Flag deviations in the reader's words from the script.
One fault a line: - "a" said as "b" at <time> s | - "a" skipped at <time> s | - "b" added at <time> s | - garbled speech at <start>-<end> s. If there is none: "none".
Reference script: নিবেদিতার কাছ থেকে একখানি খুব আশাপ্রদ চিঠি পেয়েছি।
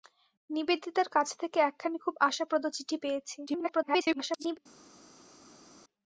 - garbled speech at 3.5-4.6 s